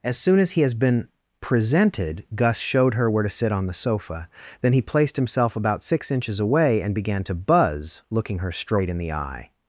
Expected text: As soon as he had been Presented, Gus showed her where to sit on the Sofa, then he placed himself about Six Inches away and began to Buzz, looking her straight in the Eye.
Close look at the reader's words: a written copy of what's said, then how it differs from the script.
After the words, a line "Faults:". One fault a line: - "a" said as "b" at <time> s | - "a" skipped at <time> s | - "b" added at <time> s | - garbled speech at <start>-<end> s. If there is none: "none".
As soon as he has been Presented, Gus showed her where to sit on the Sofa, then he placed himself about Six Inches away and began to Buzz, looking her straight in the Eye.
Faults:
- "had" said as "has" at 0.6 s